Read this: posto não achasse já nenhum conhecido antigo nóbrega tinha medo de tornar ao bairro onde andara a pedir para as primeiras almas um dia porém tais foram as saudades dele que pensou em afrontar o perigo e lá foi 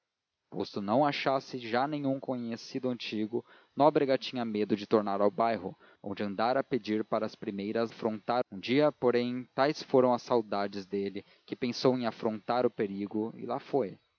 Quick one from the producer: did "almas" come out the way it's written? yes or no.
no